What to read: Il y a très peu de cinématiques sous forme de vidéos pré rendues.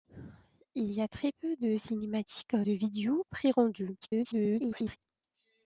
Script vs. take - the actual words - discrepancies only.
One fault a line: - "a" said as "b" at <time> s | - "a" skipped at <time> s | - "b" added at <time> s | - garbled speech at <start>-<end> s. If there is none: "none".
- "sous forme" skipped at 2.5 s
- garbled speech at 4.0-5.0 s